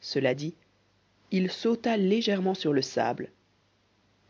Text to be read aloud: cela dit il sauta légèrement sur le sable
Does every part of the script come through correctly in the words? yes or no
yes